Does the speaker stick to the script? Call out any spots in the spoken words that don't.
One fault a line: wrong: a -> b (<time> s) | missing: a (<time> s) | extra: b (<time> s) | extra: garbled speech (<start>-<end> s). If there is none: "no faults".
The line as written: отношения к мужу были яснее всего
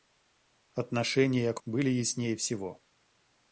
missing: мужу (1.6 s)